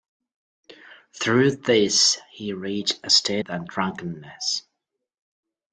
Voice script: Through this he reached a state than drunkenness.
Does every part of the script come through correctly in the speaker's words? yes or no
yes